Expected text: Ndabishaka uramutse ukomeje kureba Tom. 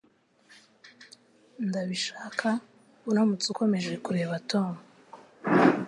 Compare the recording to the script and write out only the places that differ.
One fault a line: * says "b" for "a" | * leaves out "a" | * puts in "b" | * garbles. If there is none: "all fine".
all fine